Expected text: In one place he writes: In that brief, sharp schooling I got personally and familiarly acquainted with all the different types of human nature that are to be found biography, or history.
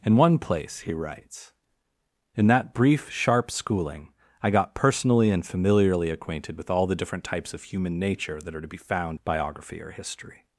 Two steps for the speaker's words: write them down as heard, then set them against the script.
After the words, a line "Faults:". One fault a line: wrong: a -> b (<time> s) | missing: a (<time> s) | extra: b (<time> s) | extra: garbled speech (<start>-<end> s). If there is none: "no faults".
In one place he writes: In that brief, sharp schooling I got personally and familiarly acquainted with all the different types of human nature that are to be found biography, or history.
Faults:
no faults